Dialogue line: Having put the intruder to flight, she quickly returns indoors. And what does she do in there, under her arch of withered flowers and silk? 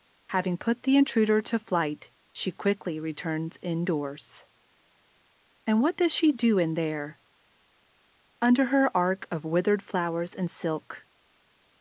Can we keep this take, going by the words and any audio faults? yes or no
yes